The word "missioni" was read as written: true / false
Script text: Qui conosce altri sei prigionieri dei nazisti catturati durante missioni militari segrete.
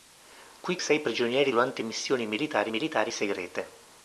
true